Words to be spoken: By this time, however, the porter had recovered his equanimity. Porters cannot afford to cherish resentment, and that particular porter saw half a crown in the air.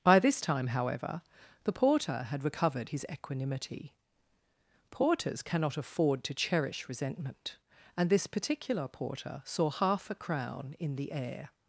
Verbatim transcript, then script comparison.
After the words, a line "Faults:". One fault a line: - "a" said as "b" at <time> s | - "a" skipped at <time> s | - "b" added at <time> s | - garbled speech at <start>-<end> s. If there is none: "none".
By this time, however, the porter had recovered his equanimity. Porters cannot afford to cherish resentment, and this particular porter saw half a crown in the air.
Faults:
- "that" said as "this" at 8.1 s